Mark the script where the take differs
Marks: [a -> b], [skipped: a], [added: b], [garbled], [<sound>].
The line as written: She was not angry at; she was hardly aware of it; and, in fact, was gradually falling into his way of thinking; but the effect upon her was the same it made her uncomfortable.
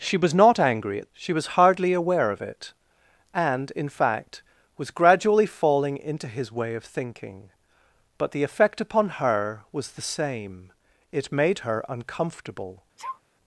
She was not angry at; she was hardly aware of it; and, in fact, was gradually falling into his way of thinking; but the effect upon her was the same it made her uncomfortable. [sneeze]